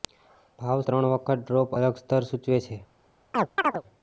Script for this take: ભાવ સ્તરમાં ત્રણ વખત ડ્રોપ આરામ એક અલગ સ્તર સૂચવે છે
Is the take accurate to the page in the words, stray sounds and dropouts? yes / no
no